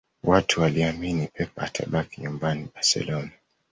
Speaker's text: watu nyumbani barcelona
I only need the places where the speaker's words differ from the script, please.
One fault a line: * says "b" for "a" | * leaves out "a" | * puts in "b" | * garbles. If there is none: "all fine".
* puts in "waliamini pep atabaki"